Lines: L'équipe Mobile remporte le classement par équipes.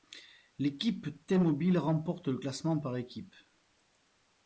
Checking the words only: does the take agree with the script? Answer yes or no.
no